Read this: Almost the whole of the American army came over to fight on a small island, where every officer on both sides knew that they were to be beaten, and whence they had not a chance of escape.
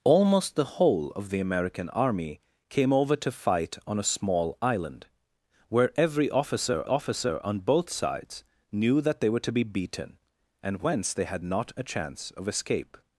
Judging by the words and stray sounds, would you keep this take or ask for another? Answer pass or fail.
fail